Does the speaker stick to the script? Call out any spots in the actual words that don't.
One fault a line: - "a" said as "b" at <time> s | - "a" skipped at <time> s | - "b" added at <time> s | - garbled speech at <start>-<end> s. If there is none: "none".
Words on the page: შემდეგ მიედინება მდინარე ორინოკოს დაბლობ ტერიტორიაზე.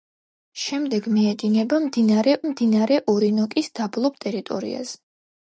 - "მდინარე" added at 2.5 s